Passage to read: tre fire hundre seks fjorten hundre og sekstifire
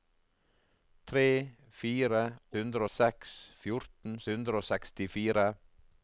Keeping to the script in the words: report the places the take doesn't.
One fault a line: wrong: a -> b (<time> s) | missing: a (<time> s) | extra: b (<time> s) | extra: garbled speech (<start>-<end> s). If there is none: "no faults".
no faults